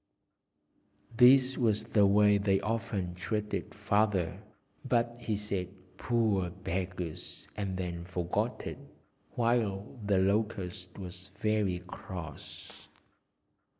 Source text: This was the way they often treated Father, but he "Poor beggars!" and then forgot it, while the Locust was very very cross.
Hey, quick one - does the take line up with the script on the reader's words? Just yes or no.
no